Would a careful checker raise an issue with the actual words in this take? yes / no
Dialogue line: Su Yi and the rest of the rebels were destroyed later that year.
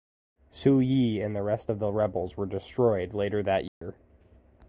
no